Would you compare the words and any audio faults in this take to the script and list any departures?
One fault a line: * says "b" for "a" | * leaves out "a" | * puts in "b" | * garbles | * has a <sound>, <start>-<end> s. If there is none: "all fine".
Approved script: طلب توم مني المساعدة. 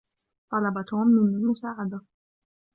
all fine